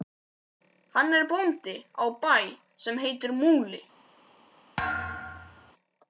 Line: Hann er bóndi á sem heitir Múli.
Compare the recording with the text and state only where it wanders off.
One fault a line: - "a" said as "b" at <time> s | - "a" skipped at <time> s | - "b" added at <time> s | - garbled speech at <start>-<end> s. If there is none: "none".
- "bæ" added at 2.2 s